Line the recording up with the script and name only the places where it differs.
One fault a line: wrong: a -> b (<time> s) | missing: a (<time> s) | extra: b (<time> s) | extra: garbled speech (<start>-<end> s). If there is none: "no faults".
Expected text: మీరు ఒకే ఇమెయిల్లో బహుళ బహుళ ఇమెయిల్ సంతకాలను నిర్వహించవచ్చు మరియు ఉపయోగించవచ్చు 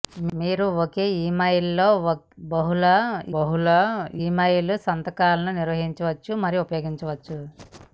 no faults